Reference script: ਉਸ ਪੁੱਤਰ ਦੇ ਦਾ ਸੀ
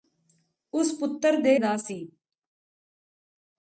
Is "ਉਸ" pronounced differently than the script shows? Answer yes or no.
no